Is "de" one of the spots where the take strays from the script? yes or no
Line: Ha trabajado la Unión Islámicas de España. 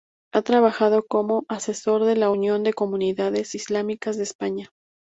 no